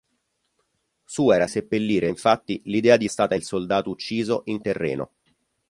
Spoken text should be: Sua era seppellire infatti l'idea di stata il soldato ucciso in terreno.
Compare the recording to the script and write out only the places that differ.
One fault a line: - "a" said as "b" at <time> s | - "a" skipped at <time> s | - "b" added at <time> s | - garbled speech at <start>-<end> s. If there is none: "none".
none